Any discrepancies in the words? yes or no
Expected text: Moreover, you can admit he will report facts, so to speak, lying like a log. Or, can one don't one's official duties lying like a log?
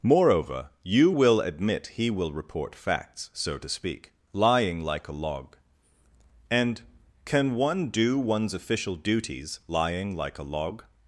yes